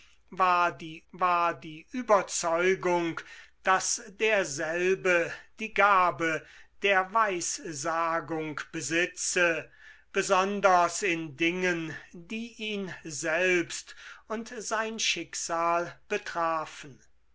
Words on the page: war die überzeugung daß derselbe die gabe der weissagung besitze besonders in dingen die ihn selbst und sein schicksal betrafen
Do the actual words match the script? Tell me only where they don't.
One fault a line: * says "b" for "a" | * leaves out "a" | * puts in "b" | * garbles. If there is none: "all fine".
* puts in "war die"